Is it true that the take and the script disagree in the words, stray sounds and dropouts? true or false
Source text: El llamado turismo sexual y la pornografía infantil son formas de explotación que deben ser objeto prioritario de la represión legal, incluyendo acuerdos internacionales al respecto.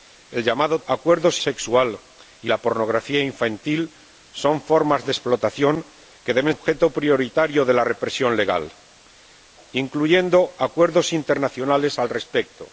true